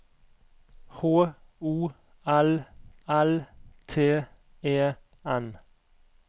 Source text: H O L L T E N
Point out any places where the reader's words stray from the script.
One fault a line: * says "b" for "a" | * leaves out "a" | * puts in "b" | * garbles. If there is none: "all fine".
all fine